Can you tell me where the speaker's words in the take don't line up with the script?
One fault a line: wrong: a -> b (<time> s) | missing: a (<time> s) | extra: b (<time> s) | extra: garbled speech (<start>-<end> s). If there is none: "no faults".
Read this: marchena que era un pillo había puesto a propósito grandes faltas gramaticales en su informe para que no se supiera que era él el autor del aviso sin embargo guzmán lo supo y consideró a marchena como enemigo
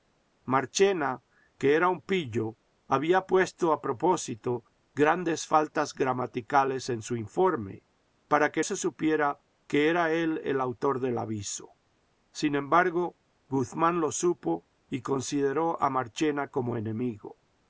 missing: no (8.6 s)